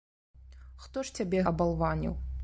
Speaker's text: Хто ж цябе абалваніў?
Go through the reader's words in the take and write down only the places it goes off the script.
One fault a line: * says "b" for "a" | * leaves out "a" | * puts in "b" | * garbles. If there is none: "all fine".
all fine